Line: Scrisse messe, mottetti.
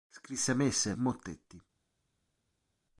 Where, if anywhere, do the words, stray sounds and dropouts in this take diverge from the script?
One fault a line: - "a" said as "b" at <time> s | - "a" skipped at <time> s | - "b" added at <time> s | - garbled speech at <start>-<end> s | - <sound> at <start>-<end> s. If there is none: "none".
none